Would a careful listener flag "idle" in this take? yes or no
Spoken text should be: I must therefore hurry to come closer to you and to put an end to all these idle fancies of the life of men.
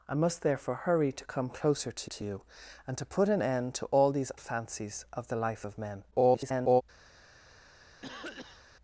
yes